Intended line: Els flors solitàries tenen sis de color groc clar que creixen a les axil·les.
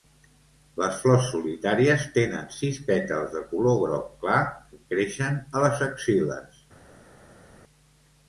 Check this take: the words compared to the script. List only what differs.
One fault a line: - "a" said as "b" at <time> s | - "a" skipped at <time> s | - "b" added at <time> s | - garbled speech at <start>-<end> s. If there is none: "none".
- "Els" said as "Les" at 0.8 s
- "pètals" added at 2.9 s